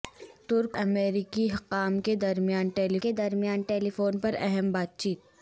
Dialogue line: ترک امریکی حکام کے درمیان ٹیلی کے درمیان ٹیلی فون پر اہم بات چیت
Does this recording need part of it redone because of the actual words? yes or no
no